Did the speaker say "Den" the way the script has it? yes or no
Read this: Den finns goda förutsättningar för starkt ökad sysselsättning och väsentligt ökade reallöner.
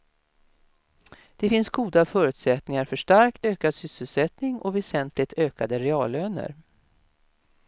no